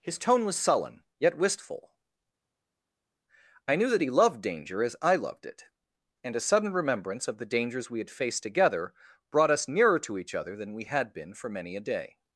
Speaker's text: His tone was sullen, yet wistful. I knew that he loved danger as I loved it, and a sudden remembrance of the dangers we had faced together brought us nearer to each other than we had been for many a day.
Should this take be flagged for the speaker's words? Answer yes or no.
no